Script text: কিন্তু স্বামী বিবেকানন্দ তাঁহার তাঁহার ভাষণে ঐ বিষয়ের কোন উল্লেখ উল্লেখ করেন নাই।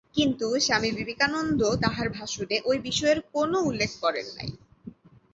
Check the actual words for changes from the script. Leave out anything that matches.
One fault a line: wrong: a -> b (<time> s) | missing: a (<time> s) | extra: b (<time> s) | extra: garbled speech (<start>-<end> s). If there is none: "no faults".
missing: তাঁহার (2.1 s)
missing: উল্লেখ (3.9 s)